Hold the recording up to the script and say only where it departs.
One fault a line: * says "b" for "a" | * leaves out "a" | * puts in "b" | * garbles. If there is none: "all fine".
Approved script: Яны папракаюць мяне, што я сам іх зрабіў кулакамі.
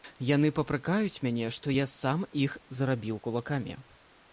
all fine